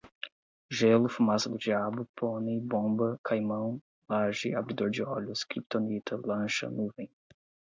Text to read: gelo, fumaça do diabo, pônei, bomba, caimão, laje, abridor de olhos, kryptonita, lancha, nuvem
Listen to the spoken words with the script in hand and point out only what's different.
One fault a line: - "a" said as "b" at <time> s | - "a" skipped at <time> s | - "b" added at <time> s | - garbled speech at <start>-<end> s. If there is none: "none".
none